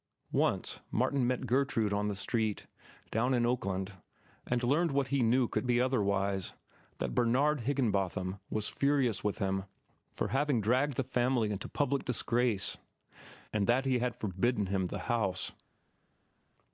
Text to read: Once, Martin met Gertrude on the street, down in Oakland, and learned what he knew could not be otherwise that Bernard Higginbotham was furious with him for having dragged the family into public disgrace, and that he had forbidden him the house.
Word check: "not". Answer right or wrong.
wrong